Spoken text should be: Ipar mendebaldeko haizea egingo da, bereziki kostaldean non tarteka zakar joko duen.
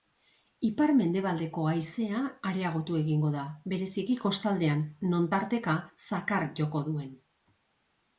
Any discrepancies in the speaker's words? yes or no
yes